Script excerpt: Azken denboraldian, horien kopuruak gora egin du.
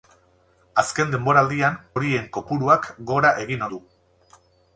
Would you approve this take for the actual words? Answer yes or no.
yes